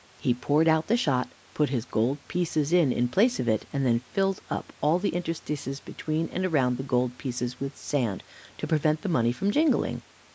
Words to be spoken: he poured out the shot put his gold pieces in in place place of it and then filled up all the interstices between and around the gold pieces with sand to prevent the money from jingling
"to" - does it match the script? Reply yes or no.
yes